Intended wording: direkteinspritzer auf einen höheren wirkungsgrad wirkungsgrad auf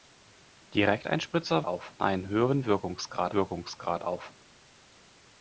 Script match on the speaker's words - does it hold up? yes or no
yes